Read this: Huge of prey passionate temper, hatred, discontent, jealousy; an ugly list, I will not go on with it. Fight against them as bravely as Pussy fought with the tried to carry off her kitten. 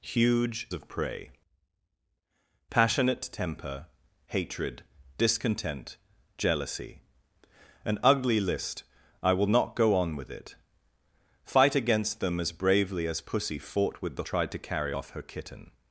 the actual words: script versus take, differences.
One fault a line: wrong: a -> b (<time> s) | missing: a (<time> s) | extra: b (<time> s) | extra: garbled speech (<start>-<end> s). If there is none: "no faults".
no faults